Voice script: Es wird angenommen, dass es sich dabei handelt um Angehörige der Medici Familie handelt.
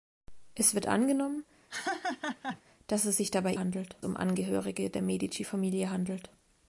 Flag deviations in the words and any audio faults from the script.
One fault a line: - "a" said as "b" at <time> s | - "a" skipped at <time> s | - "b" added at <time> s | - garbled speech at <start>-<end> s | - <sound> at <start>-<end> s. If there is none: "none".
- laugh at 1.7-2.6 s